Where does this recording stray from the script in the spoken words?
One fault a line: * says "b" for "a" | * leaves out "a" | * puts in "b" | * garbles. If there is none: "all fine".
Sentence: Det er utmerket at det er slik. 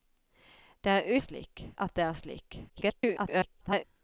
* says "slik" for "utmerket"
* garbles